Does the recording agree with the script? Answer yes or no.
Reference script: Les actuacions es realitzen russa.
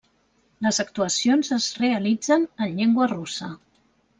no